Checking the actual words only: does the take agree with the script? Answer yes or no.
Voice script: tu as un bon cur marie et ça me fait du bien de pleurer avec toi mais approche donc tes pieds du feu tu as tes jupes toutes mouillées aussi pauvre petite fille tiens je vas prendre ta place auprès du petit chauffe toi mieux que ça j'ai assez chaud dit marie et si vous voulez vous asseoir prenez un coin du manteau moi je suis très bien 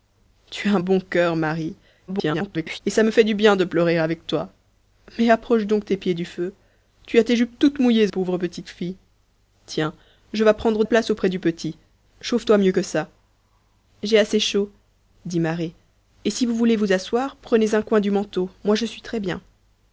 no